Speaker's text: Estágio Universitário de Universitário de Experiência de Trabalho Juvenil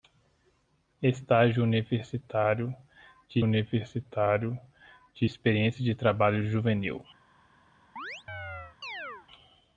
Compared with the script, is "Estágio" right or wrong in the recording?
right